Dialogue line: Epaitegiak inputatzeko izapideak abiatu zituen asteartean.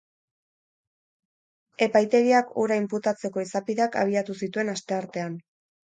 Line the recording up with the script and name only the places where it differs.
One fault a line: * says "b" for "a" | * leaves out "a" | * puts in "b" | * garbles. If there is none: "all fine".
* puts in "hura"